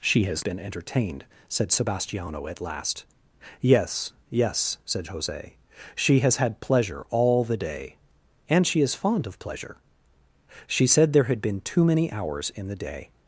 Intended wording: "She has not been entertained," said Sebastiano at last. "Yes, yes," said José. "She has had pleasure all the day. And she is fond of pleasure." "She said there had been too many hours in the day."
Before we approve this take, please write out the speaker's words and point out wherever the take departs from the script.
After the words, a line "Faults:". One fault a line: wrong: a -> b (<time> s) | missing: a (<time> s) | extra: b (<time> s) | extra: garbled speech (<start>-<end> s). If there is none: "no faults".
"She has been entertained," said Sebastiano at last. "Yes, yes," said José. "She has had pleasure all the day. And she is fond of pleasure." "She said there had been too many hours in the day."
Faults:
missing: not (0.4 s)